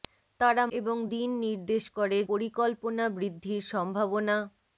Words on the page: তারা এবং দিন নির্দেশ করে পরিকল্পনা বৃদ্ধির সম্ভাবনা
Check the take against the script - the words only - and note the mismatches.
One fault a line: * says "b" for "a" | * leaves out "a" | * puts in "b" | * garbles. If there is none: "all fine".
all fine